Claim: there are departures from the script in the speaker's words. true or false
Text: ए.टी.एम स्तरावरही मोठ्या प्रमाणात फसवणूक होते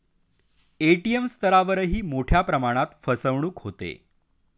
false